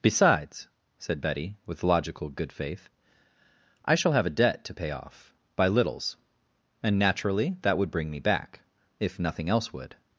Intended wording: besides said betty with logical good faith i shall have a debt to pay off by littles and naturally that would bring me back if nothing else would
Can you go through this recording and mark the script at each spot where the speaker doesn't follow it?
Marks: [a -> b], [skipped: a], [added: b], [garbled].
besides said betty with logical good faith i shall have a debt to pay off by littles and naturally that would bring me back if nothing else would